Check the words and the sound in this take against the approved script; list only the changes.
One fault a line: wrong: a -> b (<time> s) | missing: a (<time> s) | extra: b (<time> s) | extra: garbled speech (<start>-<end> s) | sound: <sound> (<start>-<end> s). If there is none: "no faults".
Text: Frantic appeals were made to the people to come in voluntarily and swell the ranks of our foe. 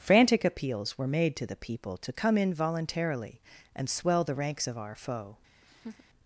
sound: laugh (5.6-6.0 s)